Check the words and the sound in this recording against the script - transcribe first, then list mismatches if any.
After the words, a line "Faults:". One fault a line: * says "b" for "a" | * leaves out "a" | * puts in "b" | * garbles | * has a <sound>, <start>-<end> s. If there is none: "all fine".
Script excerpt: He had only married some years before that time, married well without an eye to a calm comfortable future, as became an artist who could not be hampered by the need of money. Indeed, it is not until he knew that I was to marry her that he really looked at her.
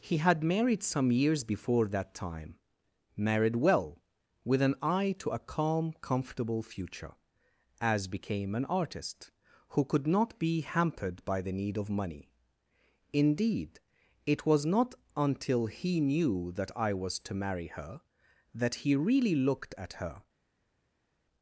He had married some years before that time, married well with an eye to a calm comfortable future, as became an artist who could not be hampered by the need of money. Indeed, it was not until he knew that I was to marry her that he really looked at her.
Faults:
* leaves out "only"
* says "with" for "without"
* says "was" for "is"